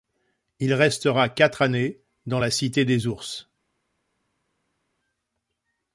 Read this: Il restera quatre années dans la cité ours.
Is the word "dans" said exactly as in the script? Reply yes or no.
yes